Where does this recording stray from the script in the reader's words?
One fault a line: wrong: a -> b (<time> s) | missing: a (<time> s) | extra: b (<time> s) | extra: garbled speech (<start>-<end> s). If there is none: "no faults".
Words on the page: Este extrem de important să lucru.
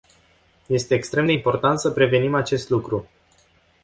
extra: prevenim acest (1.9 s)